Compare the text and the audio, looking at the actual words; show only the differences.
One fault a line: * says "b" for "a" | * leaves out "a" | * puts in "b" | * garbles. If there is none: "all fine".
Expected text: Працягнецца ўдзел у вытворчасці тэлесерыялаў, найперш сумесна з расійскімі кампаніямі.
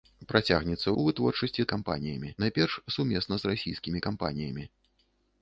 * leaves out "ўдзел"
* says "кампаніямі" for "тэлесерыялаў"